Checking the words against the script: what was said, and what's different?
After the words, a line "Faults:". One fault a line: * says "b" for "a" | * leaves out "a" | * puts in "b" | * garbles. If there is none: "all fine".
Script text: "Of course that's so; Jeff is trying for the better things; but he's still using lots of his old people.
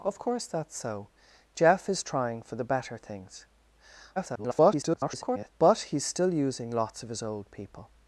"Of course that's so; Jeff is trying for the better things; [garbled] but he's still using lots of his old people.
Faults:
* garbles